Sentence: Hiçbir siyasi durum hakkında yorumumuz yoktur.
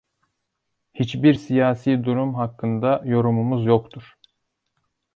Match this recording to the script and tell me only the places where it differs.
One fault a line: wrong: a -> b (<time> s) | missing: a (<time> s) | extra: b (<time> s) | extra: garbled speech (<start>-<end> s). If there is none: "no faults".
no faults